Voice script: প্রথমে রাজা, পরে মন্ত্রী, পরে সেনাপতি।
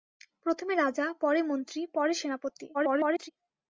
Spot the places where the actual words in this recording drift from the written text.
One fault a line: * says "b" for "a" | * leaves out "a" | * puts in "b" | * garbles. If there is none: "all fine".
* garbles